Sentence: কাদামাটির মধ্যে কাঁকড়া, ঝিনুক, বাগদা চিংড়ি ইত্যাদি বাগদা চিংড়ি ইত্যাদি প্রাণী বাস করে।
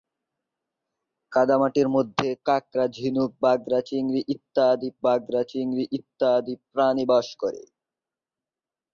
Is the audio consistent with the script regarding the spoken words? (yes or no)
yes